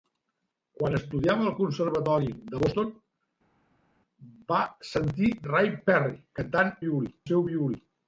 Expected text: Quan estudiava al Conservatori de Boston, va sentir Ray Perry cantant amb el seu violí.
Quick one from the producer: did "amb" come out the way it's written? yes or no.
no